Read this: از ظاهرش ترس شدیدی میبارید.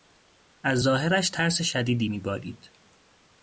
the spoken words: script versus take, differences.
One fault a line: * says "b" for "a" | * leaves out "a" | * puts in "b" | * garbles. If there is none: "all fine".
all fine